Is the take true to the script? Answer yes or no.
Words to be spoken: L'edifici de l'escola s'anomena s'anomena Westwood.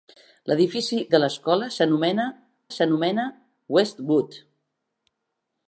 yes